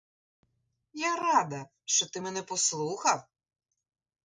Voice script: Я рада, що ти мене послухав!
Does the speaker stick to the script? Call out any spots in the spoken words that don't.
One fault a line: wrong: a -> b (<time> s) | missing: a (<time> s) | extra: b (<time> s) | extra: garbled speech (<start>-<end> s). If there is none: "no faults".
no faults